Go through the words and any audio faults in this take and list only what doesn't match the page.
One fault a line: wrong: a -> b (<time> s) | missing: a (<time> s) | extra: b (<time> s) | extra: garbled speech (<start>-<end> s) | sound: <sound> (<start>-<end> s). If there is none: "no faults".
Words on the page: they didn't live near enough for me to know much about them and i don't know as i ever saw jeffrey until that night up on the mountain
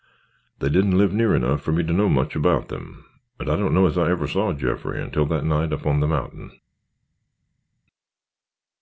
no faults